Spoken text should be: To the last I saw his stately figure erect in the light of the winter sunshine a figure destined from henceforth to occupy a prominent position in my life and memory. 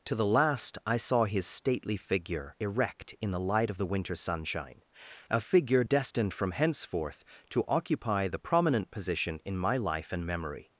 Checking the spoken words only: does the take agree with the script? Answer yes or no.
no